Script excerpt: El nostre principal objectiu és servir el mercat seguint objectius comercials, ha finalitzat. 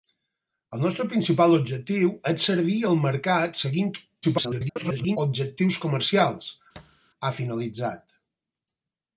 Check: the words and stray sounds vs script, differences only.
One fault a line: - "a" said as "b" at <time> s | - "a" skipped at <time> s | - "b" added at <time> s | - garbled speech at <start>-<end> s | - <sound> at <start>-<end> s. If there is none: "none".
- garbled speech at 4.2-5.2 s
- thud at 6.8-7.0 s